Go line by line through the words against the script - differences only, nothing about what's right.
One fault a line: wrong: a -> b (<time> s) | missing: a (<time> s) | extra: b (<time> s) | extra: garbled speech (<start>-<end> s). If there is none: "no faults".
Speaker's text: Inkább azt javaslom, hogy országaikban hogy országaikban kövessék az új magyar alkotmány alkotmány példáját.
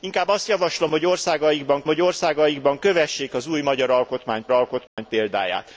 no faults